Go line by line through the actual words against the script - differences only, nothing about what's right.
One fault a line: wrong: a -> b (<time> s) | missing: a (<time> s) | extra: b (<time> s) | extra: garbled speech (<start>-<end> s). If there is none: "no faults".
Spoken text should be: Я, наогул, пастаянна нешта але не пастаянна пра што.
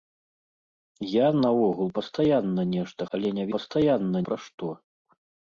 no faults